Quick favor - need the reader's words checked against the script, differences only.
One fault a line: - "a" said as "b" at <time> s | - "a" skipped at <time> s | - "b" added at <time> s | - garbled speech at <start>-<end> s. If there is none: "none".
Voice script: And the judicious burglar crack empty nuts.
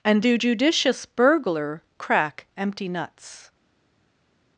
none